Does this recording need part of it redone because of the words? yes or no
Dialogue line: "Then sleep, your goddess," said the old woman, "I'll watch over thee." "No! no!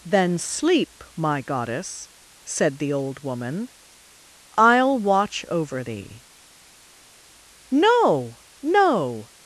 yes